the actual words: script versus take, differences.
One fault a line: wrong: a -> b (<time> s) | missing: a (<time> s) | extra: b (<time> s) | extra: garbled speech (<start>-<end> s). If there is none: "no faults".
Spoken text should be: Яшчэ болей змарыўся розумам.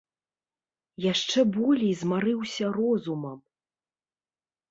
no faults